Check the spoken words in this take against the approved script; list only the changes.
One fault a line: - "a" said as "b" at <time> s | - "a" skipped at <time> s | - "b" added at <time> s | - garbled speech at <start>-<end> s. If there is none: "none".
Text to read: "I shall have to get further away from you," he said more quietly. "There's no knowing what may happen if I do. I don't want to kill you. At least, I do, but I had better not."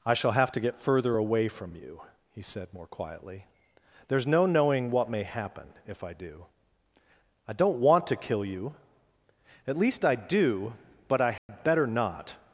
none